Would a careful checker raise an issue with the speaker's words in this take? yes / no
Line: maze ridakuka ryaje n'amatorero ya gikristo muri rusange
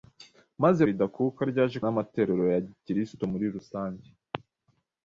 no